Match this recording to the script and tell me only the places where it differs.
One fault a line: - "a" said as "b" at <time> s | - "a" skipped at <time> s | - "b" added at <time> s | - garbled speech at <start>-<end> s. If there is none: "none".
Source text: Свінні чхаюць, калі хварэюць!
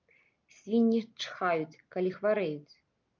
none